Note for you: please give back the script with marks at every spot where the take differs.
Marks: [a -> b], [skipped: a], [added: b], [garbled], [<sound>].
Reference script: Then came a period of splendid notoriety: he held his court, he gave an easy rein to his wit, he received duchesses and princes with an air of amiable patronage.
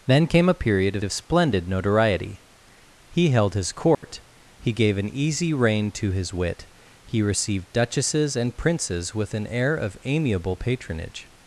Then came a period of [added: of] splendid notoriety: he held his court, [dropout] he gave an easy rein to his wit, he received duchesses and princes with an air of amiable patronage.